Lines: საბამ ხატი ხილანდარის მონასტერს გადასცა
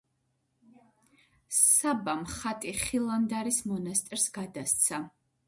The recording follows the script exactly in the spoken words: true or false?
true